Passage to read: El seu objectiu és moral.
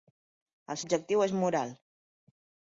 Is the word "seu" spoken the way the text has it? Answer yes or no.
no